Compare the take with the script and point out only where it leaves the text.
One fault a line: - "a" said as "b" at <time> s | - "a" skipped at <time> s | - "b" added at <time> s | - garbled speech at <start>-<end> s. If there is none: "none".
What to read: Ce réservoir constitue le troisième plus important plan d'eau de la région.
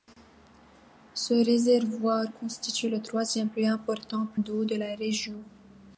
- "plan" skipped at 4.2 s